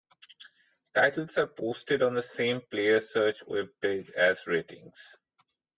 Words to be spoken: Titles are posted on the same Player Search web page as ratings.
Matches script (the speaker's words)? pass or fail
pass